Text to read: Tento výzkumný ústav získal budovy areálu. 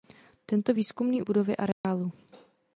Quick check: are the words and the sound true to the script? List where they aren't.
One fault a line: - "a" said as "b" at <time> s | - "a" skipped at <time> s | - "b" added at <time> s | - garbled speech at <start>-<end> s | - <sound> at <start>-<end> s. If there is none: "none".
- "ústav získal" skipped at 1.2 s
- dropout at 1.7-1.8 s